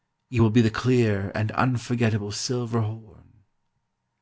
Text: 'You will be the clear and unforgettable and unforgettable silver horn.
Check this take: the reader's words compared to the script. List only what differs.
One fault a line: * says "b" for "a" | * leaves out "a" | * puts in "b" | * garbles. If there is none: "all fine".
* leaves out "and unforgettable"